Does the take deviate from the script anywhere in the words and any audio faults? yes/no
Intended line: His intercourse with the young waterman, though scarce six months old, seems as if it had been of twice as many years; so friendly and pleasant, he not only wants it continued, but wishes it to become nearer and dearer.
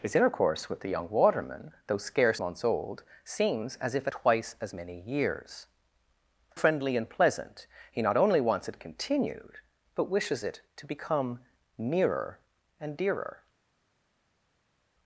yes